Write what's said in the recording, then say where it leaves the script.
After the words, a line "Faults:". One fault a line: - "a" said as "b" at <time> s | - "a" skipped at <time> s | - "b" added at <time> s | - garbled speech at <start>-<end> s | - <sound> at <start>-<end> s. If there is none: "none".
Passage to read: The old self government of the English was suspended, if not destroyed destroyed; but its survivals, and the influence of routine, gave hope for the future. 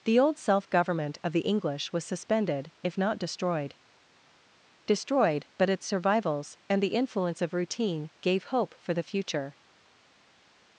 The old self government of the English was suspended, if not destroyed destroyed; but its survivals, and the influence of routine, gave hope for the future.
Faults:
none